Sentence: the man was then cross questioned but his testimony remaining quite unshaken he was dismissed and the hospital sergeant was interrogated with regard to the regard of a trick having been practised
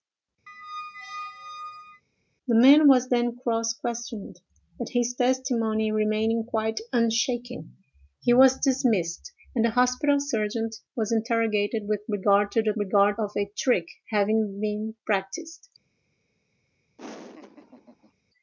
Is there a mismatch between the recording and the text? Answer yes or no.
no